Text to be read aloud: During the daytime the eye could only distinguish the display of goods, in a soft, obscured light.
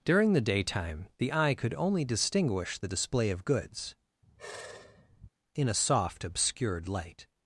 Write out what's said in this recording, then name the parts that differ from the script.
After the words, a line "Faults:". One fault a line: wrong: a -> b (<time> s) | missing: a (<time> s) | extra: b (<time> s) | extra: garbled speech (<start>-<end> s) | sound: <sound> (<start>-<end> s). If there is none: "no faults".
During the daytime the eye could only distinguish the display of goods, in a soft, obscured light.
Faults:
sound: sigh (4.2-5.3 s)